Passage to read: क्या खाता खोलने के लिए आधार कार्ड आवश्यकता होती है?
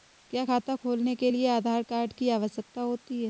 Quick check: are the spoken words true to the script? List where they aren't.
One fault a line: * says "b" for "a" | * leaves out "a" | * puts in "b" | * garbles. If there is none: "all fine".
* puts in "की"